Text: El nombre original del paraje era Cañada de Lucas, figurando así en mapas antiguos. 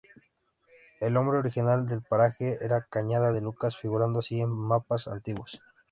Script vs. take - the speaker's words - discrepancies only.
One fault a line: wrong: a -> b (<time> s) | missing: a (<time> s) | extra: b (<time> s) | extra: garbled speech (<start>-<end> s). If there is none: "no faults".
no faults